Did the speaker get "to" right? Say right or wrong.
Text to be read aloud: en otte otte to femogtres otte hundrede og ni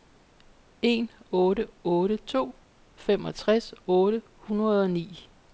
right